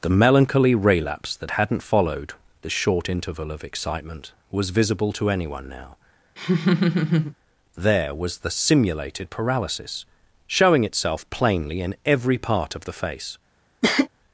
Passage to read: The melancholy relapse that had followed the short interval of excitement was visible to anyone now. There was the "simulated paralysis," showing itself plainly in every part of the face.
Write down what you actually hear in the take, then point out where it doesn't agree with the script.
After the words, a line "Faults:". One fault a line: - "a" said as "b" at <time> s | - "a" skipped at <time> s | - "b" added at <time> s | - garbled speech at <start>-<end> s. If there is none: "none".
The melancholy relapse that hadn't followed the short interval of excitement was visible to anyone now. There was the "simulated paralysis," showing itself plainly in every part of the face.
Faults:
- "had" said as "hadn't" at 1.5 s